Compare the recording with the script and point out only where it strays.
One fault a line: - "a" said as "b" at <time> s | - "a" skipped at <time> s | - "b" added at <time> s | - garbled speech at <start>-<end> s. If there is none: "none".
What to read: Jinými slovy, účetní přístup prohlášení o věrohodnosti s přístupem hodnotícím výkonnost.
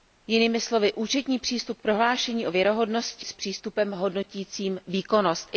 none